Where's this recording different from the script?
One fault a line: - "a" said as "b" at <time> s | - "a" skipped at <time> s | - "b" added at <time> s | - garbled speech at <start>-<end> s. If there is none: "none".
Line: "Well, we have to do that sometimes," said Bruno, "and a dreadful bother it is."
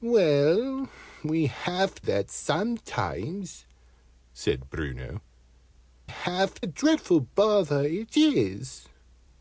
- "to do" skipped at 2.0 s
- "and" said as "have" at 6.0 s